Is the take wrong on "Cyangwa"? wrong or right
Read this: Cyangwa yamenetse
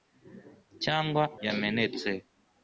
right